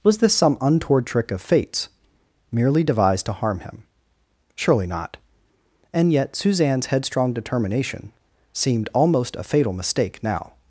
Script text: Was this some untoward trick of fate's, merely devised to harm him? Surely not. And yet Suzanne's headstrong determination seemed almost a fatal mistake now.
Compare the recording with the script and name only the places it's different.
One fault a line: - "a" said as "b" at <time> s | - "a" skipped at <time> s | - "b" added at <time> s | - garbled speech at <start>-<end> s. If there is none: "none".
none